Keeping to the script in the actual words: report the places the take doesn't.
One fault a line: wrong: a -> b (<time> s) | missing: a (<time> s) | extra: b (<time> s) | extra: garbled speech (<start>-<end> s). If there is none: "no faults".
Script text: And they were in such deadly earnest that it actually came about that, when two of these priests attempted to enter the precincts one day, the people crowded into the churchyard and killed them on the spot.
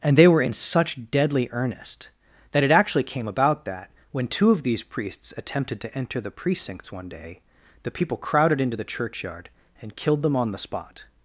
no faults